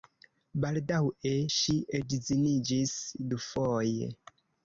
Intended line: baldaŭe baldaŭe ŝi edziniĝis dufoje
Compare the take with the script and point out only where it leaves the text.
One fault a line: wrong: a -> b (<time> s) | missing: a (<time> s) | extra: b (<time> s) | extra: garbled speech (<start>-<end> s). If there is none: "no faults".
missing: baldaŭe (1.3 s)